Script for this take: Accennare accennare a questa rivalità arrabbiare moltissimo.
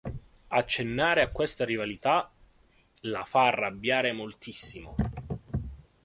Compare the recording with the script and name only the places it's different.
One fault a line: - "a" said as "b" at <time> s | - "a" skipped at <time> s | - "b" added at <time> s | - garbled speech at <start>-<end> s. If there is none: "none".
- "accennare" skipped at 1.2 s
- "la fa" added at 3.0 s